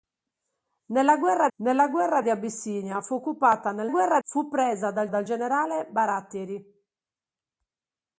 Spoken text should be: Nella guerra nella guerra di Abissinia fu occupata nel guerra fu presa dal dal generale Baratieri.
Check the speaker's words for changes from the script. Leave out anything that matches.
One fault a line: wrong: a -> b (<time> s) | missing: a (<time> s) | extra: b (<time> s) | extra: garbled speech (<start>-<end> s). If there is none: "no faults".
no faults